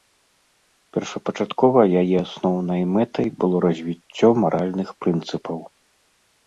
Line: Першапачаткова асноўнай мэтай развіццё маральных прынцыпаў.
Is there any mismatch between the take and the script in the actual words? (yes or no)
yes